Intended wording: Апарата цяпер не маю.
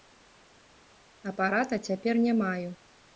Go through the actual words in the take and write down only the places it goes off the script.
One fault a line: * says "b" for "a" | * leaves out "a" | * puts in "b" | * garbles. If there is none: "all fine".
all fine